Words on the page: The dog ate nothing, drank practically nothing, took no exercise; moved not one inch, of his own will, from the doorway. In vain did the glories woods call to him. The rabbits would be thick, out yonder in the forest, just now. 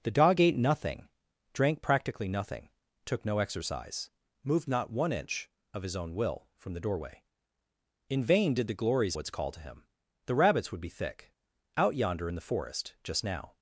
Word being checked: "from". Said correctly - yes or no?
yes